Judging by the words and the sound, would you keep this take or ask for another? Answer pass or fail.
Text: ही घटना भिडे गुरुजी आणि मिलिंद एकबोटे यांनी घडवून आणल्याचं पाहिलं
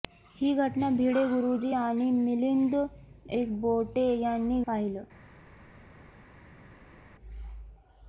fail